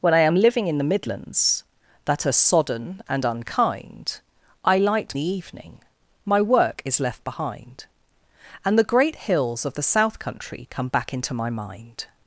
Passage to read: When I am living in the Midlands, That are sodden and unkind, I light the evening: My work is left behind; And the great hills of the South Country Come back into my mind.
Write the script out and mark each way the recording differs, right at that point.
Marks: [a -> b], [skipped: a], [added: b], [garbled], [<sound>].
When I am living in the Midlands, That are sodden and unkind, I light the evening: My work is left behind; And the great hills of the South Country Come back into my mind.